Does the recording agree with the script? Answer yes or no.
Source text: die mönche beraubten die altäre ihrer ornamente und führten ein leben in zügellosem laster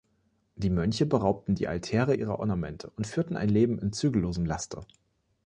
yes